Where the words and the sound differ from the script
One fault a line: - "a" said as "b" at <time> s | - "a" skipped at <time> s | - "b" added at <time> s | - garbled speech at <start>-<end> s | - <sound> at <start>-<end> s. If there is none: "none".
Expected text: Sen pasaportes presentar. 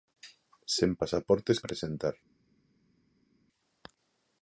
none